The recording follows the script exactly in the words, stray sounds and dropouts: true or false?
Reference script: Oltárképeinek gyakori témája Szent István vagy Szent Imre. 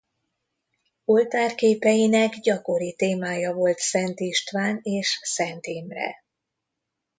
false